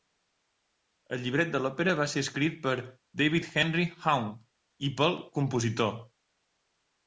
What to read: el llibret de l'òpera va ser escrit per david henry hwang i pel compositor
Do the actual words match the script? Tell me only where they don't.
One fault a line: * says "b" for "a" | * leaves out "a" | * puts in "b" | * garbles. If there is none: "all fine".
all fine